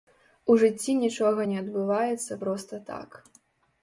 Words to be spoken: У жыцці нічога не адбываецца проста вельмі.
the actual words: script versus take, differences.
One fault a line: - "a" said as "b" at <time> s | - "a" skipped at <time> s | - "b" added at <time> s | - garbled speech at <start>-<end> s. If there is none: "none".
- "вельмі" said as "так" at 2.9 s